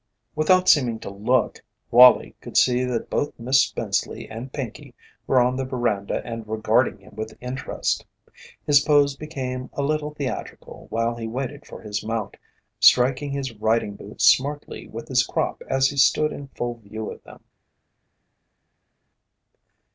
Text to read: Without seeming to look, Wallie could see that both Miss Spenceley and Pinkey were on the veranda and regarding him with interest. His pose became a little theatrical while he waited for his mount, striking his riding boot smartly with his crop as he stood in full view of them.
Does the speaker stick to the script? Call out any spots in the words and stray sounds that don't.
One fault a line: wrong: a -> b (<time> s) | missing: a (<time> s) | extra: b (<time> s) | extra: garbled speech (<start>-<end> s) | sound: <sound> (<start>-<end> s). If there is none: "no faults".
no faults